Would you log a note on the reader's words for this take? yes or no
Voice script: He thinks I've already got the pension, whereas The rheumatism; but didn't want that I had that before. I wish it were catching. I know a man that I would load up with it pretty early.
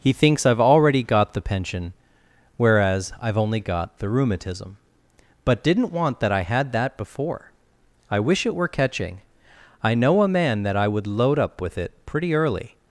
yes